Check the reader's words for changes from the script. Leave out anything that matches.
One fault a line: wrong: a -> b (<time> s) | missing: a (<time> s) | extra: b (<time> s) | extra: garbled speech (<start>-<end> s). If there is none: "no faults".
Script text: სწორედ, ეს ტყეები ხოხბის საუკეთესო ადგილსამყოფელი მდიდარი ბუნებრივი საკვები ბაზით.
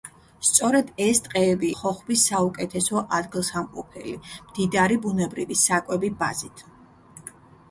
no faults